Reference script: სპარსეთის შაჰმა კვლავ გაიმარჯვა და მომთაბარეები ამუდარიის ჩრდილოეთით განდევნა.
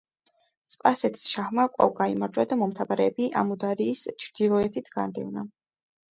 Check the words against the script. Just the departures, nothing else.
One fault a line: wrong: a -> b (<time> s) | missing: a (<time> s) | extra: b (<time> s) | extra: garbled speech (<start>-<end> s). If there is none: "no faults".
no faults